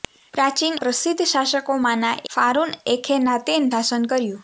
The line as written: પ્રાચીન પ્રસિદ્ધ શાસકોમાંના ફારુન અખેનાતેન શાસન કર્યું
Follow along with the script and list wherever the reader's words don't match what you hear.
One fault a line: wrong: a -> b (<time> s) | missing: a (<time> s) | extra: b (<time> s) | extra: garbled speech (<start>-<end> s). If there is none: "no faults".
no faults